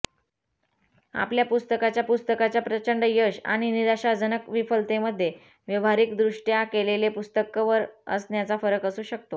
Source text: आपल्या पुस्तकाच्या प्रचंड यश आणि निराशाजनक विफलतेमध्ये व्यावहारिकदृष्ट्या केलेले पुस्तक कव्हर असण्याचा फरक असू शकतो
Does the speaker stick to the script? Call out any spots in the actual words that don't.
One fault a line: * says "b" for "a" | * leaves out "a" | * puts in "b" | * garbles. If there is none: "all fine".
* puts in "पुस्तकाच्या"